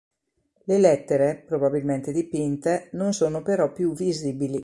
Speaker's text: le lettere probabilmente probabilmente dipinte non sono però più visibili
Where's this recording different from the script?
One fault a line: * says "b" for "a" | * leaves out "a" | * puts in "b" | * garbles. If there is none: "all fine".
* leaves out "probabilmente"